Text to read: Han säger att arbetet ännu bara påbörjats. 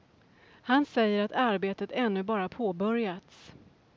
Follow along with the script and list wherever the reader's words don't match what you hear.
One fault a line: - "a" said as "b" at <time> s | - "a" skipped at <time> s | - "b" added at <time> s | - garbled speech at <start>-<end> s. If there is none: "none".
none